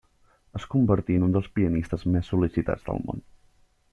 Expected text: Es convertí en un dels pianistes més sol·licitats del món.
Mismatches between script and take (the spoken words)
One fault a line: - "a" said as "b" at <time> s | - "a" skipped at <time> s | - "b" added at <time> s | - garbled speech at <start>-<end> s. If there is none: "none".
none